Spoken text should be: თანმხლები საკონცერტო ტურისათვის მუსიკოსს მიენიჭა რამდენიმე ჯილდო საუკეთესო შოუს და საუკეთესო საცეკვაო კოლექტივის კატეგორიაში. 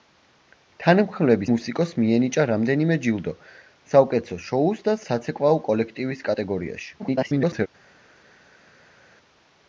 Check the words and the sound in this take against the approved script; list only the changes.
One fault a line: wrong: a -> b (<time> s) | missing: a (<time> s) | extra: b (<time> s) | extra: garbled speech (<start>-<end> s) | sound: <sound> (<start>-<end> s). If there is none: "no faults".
missing: საკონცერტო ტურისათვის (1.5 s)
missing: საუკეთესო (5.0 s)
extra: garbled speech (7.0-7.7 s)